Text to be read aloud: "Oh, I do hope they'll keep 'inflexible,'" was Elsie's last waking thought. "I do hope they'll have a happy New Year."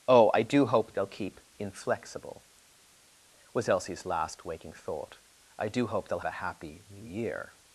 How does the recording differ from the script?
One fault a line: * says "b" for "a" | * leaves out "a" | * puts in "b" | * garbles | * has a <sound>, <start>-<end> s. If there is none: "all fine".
* leaves out "have"